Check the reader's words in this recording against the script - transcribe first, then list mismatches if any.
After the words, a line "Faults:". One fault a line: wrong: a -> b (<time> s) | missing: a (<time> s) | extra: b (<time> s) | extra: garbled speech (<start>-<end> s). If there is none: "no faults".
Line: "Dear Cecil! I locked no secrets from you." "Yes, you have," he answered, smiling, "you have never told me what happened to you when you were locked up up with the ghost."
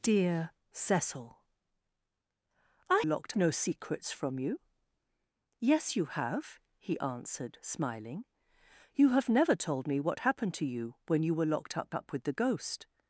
"Dear Cecil! I locked no secrets from you." "Yes, you have," he answered, smiling, "you have never told me what happened to you when you were locked up up with the ghost."
Faults:
no faults